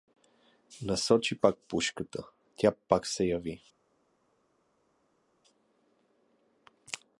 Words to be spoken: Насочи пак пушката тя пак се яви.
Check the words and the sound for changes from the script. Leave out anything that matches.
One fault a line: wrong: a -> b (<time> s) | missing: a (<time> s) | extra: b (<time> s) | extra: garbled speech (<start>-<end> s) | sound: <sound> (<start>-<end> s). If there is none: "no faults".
no faults